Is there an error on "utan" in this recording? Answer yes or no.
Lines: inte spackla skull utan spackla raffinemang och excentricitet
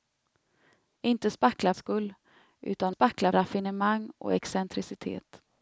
no